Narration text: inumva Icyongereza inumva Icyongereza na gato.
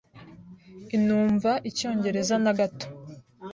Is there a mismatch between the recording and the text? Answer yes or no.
yes